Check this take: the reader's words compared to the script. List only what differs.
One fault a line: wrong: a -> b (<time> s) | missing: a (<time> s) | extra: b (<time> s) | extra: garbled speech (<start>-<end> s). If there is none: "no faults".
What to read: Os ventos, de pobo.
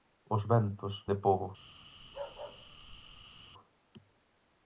no faults